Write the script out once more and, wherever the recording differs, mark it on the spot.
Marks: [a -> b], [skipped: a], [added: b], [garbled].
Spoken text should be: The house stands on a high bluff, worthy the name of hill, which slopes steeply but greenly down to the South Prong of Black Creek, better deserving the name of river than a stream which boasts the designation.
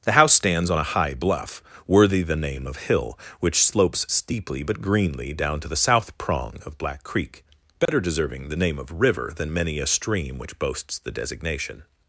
The house stands on a high bluff, worthy the name of hill, which slopes steeply but greenly down to the South Prong of Black Creek, better deserving the name of river than [added: many] a stream which boasts the designation.